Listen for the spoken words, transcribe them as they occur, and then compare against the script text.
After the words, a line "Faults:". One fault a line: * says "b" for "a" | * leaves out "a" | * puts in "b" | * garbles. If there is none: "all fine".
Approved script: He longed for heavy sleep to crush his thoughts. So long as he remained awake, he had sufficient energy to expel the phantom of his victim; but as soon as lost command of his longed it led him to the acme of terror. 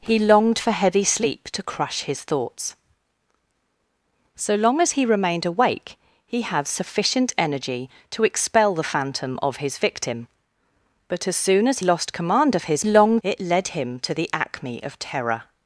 He longed for heavy sleep to crush his thoughts. So long as he remained awake, he had sufficient energy to expel the phantom of his victim; but as soon as lost command of his longed it led him to the acme of terror.
Faults:
all fine